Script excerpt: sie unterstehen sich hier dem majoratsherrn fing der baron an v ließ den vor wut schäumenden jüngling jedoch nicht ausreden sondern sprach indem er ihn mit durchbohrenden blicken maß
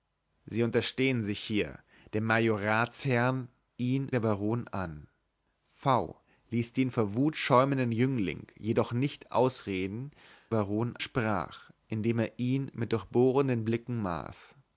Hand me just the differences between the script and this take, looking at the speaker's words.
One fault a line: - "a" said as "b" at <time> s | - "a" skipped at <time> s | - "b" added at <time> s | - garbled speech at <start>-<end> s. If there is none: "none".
- "fing" said as "ihn" at 3.8 s
- "sondern" said as "baron" at 10.5 s